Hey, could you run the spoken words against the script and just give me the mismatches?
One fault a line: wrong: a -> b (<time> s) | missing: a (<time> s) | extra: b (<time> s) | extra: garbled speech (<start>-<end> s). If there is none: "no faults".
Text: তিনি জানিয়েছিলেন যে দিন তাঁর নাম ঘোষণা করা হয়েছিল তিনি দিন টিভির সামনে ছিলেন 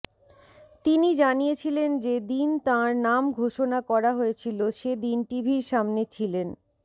wrong: তিনি -> সে (4.7 s)